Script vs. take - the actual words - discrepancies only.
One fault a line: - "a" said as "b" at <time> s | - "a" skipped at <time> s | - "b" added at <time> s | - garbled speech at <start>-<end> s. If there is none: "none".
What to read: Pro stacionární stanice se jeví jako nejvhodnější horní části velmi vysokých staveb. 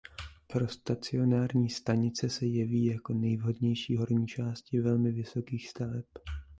none